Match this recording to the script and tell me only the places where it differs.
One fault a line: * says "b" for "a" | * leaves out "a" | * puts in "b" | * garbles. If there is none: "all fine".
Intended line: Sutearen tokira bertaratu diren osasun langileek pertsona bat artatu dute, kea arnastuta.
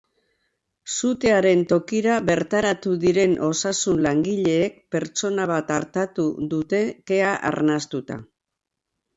all fine